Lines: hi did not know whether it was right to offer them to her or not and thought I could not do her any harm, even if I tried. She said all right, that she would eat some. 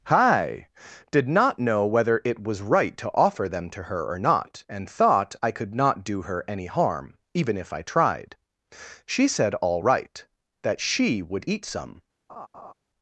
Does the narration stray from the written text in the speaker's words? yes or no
no